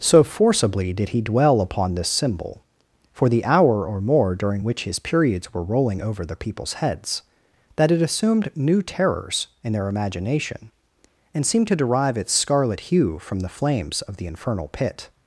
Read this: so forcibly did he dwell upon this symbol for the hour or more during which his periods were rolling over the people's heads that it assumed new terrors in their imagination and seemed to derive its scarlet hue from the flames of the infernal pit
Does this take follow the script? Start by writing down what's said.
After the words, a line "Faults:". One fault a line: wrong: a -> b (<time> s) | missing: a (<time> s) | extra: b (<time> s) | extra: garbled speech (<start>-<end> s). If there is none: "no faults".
so forcibly did he dwell upon this symbol for the hour or more during which his periods were rolling over the people's heads that it assumed new terrors in their imagination and seemed to derive its scarlet hue from the flames of the infernal pit
Faults:
no faults